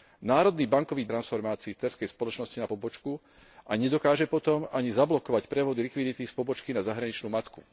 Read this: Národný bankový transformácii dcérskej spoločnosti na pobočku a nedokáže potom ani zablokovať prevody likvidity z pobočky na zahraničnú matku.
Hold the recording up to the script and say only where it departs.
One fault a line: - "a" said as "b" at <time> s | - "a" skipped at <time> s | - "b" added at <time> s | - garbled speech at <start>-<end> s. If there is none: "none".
none